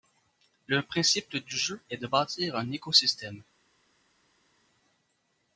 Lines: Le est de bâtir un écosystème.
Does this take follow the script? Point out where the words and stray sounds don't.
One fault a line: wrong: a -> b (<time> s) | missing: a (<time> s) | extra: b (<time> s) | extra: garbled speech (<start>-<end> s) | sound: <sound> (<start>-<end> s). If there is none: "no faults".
extra: principe du jeu (0.8 s)